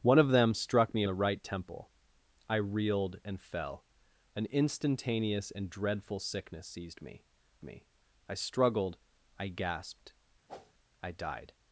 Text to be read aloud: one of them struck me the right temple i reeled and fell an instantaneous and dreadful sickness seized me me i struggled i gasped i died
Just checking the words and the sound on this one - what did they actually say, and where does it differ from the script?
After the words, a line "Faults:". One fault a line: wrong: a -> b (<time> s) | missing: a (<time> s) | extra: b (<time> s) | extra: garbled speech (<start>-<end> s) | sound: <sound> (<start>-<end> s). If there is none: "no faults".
one of them struck me the right temple i reeled and fell an instantaneous and dreadful sickness seized me me i struggled i gasped i died
Faults:
sound: whoosh (10.5-10.7 s)